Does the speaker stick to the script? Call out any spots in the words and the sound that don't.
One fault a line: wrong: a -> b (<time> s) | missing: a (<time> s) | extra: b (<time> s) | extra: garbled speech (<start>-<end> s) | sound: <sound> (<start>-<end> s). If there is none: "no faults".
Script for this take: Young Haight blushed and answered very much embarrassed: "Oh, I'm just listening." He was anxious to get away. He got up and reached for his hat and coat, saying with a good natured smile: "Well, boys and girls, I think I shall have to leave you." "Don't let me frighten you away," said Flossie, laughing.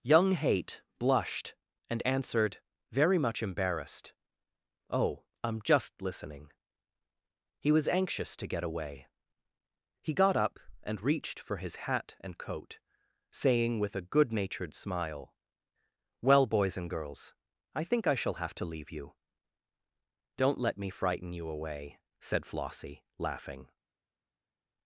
no faults